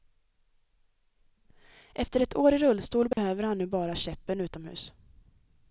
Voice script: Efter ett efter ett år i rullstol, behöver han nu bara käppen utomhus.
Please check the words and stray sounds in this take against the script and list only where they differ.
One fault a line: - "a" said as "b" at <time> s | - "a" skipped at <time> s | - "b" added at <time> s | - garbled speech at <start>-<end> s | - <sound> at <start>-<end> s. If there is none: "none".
- "efter ett" skipped at 2.4 s
- dropout at 3.1-3.2 s